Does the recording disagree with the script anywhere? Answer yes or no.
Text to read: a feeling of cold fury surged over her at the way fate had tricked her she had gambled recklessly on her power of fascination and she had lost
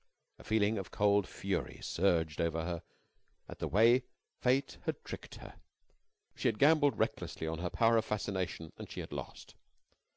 no